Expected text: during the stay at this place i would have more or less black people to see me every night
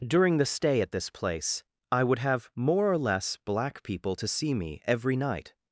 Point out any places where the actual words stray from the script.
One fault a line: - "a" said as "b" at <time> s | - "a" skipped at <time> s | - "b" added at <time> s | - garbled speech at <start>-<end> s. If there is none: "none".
none